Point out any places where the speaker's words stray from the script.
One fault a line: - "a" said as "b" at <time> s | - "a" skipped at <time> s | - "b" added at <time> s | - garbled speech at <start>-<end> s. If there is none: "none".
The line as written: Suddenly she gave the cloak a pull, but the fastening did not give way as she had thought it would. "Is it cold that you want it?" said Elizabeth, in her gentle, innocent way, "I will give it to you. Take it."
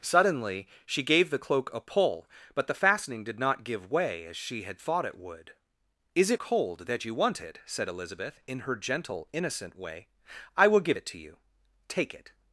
none